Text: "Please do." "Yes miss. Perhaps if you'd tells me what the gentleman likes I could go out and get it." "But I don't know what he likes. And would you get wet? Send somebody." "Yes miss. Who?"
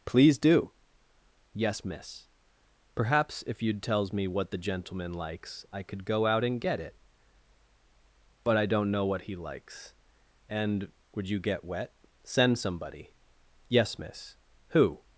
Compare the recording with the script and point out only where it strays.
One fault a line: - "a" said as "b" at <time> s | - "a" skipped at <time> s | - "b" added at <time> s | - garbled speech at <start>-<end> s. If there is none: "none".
none